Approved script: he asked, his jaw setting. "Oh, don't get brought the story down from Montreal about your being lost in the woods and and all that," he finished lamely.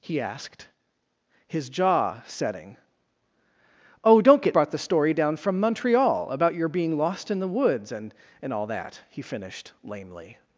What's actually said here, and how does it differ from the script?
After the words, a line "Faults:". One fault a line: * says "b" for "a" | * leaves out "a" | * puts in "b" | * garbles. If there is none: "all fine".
he asked, his jaw setting. "Oh, don't get brought the story down from Montreal about your being lost in the woods and and all that," he finished lamely.
Faults:
all fine